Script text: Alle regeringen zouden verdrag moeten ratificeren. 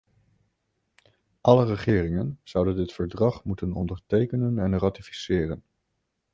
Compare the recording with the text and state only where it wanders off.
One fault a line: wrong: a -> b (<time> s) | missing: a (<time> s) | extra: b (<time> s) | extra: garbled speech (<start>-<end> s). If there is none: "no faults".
extra: dit (2.8 s)
extra: ondertekenen en (3.7 s)